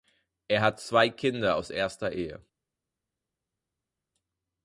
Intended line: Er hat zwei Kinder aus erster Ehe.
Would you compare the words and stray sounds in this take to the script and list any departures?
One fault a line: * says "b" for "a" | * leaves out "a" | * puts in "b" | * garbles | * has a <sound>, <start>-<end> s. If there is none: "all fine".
all fine